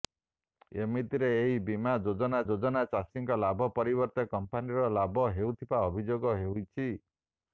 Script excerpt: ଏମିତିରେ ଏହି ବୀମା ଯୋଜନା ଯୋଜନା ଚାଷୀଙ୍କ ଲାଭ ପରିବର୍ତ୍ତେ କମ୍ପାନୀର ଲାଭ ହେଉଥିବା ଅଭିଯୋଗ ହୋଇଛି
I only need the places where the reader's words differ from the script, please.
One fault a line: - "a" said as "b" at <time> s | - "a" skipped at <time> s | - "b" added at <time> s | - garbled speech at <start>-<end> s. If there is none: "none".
none